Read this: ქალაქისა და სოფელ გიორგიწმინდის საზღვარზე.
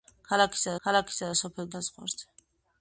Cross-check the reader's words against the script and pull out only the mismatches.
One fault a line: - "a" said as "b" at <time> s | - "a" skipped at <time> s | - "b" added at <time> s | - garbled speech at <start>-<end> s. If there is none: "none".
- "ქალაქისა" added at 0.8 s
- "გიორგიწმინდის" skipped at 1.7 s